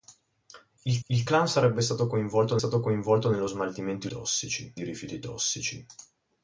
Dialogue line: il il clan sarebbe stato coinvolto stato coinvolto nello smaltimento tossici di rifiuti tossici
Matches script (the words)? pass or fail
pass